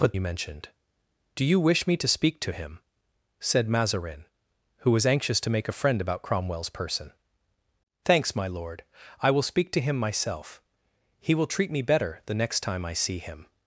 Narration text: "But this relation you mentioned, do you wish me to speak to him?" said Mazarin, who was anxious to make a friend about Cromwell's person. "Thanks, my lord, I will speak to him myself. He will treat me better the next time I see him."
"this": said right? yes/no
no